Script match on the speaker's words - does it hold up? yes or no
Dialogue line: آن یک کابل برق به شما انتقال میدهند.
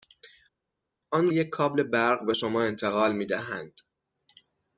yes